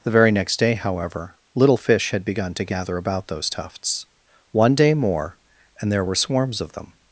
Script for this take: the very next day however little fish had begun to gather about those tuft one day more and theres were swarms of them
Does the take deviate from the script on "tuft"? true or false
true